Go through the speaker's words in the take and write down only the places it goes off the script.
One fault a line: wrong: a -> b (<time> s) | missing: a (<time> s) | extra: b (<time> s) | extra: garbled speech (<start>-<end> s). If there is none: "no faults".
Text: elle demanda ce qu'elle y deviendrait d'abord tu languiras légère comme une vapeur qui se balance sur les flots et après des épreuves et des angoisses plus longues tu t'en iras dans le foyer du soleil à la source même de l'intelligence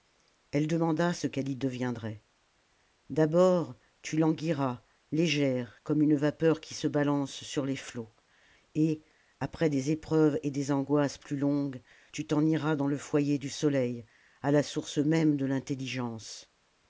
no faults